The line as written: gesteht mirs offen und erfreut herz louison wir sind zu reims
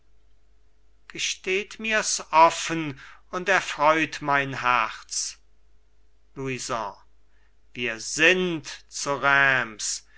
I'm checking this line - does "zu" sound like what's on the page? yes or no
yes